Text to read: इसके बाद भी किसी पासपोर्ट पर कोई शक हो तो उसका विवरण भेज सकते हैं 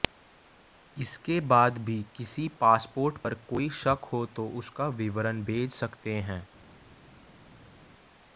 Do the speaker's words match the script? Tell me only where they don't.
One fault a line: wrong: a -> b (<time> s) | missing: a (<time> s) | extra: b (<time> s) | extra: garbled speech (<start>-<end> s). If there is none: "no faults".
no faults